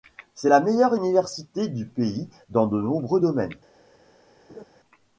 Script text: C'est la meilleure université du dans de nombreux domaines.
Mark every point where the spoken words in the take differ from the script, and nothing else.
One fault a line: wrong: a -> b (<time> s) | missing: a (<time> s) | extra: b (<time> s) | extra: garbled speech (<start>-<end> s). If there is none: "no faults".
extra: pays (1.9 s)